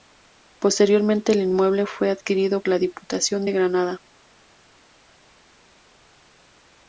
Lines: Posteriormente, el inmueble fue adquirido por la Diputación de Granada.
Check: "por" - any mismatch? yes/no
yes